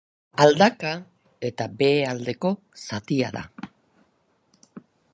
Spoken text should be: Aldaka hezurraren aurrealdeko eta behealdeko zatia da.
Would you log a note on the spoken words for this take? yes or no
yes